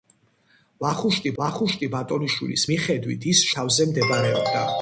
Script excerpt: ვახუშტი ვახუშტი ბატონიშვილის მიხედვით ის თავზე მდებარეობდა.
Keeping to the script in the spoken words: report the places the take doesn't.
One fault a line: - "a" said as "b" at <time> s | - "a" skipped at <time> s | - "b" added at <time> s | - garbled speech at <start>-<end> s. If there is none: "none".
none